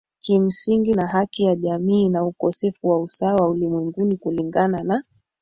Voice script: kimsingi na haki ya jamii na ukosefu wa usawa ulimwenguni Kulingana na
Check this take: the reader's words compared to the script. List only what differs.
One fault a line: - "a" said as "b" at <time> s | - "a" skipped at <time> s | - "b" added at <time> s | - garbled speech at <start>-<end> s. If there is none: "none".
none